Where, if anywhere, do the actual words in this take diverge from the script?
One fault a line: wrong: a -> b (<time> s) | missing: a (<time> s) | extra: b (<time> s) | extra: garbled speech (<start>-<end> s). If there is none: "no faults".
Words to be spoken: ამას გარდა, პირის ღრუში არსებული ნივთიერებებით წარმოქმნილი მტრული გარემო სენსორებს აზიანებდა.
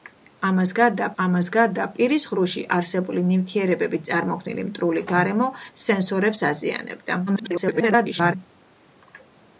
extra: ამას გარდა (1.2 s)
extra: garbled speech (7.3-8.3 s)